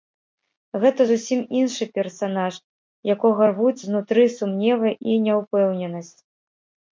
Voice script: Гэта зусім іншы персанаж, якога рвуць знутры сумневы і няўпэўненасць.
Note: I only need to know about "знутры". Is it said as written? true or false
true